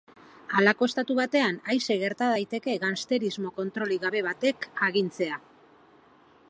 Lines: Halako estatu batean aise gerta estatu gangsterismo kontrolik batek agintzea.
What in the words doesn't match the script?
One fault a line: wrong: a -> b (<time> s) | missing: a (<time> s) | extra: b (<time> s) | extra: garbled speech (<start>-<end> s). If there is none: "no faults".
wrong: estatu -> daiteke (2.3 s)
extra: gabe (4.0 s)